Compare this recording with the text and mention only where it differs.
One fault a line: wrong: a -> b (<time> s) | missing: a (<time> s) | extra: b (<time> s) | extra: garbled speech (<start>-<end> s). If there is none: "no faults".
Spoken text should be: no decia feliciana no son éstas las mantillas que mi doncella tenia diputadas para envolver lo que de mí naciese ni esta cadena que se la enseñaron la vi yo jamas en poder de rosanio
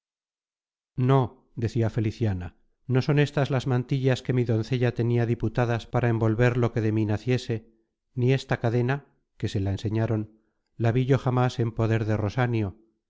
no faults